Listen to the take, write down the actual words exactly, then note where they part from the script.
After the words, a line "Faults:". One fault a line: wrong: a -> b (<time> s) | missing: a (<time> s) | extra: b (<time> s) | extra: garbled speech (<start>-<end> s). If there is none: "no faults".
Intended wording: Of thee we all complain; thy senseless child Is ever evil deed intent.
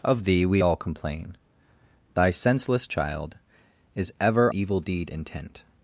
Of thee we all complain; thy senseless child Is ever evil deed intent.
Faults:
no faults